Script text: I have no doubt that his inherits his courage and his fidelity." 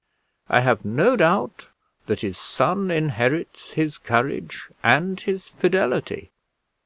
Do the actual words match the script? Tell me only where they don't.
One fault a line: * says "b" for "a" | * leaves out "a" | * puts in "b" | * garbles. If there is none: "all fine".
* puts in "son"